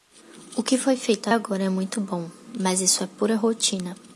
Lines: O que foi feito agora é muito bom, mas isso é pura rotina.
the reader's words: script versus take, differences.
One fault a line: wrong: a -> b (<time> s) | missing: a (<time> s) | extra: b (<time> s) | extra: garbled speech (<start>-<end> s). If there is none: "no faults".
no faults